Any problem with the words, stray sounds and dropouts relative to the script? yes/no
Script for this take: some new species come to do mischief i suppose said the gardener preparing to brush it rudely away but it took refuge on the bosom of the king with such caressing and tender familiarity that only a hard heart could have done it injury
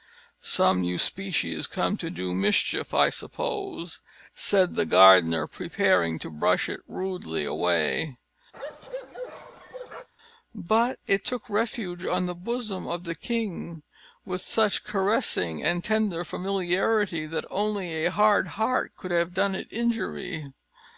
yes